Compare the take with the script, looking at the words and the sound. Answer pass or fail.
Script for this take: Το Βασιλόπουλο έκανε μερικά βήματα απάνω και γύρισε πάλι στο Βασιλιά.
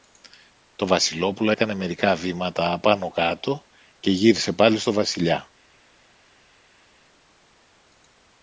fail